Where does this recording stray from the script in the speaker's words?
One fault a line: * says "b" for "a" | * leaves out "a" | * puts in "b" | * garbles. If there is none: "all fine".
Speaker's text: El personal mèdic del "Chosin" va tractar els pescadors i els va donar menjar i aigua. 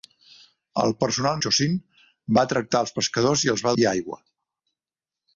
* leaves out "mèdic del"
* leaves out "donar menjar"